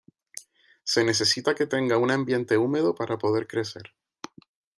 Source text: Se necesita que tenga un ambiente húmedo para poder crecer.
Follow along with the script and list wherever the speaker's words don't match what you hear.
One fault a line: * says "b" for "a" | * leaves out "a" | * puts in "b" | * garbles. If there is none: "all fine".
all fine